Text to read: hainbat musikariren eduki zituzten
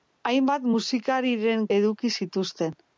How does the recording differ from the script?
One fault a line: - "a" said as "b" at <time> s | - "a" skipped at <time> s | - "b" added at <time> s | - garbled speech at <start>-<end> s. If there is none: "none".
none